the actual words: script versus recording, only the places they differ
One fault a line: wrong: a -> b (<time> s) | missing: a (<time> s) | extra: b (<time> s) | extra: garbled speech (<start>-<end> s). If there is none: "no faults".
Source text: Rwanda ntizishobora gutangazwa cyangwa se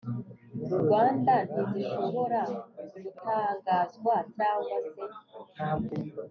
no faults